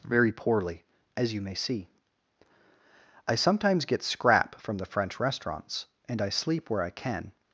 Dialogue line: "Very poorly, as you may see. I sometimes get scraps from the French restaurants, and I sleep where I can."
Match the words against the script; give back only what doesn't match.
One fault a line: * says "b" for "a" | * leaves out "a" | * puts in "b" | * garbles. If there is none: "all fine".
* says "scrap" for "scraps"